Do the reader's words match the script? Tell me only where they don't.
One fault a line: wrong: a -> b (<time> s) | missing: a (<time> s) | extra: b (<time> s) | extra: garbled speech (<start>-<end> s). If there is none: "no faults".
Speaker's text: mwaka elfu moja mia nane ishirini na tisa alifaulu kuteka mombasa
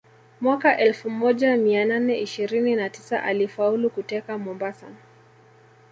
no faults